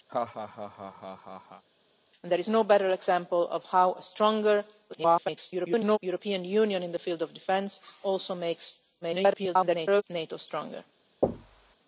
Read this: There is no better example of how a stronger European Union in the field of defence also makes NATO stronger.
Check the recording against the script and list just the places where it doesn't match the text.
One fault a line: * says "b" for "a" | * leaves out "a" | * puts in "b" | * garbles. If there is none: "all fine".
* garbles
* garbles